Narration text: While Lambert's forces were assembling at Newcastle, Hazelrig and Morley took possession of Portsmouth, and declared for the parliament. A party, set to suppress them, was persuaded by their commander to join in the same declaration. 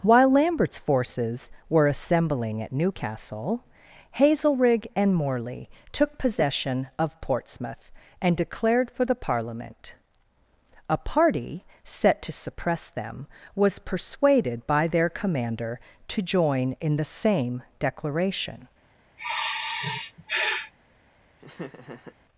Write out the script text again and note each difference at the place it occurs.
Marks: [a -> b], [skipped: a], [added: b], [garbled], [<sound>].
While Lambert's forces were assembling at Newcastle, Hazelrig and Morley took possession of Portsmouth, and declared for the parliament. A party, set to suppress them, was persuaded by their commander to join in the same declaration. [sigh] [laugh]